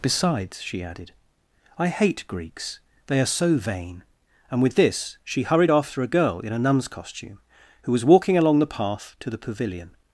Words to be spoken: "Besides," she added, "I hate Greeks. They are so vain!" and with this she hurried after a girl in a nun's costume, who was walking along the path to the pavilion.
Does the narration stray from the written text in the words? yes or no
no